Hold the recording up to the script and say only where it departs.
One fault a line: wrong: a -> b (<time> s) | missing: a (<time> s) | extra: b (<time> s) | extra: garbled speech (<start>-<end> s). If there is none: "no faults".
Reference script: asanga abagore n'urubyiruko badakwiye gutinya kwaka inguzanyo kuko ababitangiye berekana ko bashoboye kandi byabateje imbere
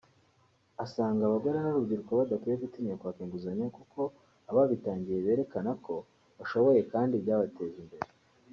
no faults